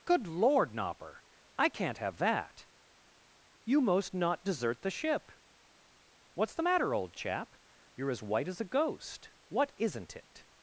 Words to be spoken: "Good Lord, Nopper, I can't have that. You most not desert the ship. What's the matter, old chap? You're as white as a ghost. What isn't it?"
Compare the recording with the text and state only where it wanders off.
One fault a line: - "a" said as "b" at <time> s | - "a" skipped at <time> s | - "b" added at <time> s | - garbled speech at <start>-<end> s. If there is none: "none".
none